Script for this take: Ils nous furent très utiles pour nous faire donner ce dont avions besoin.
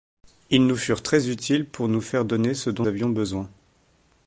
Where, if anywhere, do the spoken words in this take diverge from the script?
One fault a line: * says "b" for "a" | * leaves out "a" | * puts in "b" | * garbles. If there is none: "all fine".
all fine